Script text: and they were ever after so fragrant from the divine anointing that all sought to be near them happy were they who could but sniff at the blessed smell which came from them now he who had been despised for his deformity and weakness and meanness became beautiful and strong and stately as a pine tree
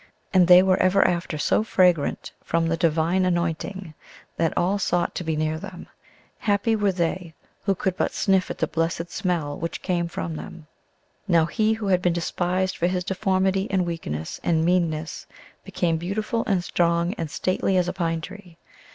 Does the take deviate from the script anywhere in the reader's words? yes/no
no